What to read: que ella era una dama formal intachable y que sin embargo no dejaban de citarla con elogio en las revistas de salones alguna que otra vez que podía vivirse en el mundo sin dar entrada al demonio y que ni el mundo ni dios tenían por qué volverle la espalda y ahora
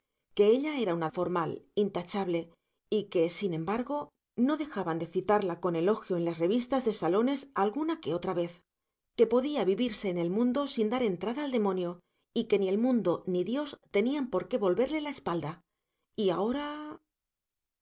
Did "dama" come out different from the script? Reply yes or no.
yes